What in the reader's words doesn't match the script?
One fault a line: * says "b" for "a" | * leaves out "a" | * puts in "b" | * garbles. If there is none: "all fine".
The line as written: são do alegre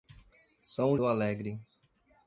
all fine